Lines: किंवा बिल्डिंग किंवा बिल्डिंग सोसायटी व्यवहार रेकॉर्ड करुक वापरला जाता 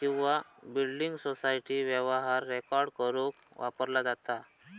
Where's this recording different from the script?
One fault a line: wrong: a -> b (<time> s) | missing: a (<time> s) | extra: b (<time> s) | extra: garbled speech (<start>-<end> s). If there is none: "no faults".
missing: किंवा बिल्डिंग (1.1 s)